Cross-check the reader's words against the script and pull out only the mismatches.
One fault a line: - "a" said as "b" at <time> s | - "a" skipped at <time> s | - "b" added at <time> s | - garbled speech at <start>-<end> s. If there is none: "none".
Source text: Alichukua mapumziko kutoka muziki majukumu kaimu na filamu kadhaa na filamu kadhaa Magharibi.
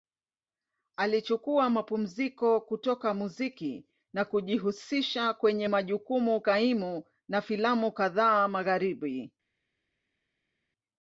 - "majukumu kaimu na filamu kadhaa" said as "na kujihusisha kwenye majukumu kaimu" at 4.1 s